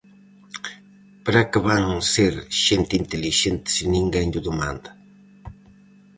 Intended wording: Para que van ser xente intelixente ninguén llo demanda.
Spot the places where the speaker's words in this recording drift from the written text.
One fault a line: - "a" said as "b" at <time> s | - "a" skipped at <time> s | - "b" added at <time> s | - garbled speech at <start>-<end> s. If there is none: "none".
- "se" added at 3.7 s